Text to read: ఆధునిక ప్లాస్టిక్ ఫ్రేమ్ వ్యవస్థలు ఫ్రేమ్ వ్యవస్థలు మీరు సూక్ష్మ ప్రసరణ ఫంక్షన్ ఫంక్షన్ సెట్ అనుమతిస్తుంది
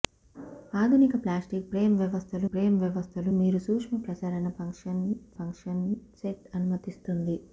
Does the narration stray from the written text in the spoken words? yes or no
no